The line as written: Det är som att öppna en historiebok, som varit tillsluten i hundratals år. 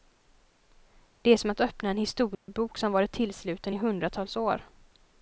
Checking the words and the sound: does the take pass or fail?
fail